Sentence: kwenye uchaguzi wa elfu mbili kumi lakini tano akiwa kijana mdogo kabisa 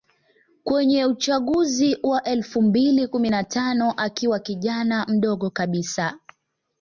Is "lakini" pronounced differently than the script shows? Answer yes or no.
yes